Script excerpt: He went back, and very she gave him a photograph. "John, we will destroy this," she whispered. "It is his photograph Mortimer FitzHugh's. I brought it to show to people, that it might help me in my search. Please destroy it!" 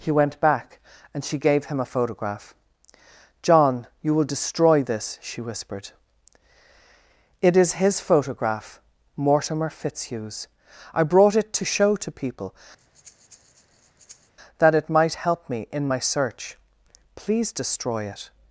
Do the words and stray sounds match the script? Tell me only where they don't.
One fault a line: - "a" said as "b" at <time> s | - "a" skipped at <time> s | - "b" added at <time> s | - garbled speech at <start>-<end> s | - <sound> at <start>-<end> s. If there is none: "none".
- "very" skipped at 1.2 s
- "we" said as "you" at 4.0 s
- breath at 12.8-14.3 s